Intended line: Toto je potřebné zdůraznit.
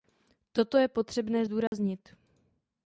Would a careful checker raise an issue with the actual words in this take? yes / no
no